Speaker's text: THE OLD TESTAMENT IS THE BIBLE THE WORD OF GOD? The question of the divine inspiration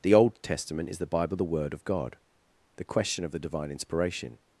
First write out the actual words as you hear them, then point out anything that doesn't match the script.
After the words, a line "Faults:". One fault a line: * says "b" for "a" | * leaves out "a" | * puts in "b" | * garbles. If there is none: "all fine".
THE OLD TESTAMENT IS THE BIBLE THE WORD OF GOD? The question of the divine inspiration
Faults:
all fine